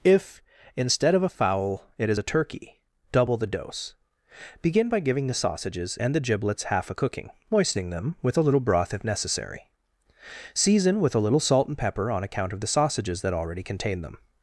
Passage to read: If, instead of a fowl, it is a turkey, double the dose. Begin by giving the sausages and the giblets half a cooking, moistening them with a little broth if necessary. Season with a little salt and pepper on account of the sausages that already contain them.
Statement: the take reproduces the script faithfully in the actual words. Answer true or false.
true